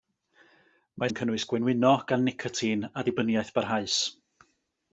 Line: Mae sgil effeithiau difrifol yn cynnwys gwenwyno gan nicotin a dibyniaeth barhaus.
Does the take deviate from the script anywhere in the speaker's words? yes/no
yes